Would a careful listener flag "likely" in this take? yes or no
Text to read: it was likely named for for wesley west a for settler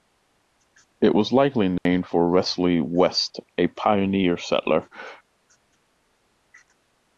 no